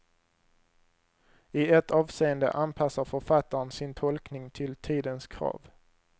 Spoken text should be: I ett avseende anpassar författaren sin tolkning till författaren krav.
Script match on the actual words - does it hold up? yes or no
no